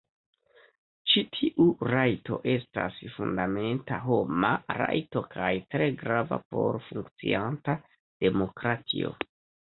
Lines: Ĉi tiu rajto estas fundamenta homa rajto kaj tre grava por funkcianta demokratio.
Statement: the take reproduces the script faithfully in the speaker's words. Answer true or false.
true